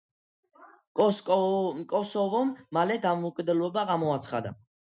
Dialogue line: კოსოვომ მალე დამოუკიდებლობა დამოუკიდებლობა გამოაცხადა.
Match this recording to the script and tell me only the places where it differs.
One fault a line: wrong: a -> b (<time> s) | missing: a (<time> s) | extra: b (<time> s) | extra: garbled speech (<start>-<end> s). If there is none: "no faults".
missing: დამოუკიდებლობა (3.9 s)